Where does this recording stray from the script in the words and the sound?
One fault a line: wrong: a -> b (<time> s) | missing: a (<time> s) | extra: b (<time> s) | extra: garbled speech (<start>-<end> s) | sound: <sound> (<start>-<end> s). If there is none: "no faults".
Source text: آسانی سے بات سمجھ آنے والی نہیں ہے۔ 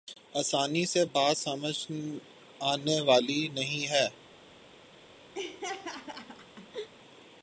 sound: laugh (5.3-6.9 s)